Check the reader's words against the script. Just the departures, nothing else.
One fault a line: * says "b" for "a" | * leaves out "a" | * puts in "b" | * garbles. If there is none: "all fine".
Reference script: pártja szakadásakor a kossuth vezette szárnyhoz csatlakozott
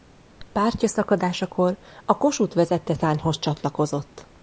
all fine